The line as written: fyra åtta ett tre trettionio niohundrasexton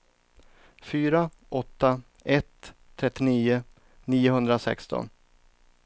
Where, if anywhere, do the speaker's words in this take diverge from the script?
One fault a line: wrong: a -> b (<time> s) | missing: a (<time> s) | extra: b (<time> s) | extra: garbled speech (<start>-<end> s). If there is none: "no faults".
missing: tre (2.7 s)